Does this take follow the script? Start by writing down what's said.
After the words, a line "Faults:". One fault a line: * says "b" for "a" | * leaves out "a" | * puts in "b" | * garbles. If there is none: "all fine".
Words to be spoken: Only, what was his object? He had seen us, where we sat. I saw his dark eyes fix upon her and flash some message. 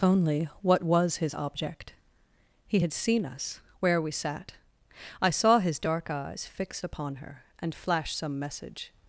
Only, what was his object? He had seen us, where we sat. I saw his dark eyes fix upon her and flash some message.
Faults:
all fine